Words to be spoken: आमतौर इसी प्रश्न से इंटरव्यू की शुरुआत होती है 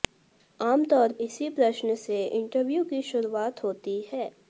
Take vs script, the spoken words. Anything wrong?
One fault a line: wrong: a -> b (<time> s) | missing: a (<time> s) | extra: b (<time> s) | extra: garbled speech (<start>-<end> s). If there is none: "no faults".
no faults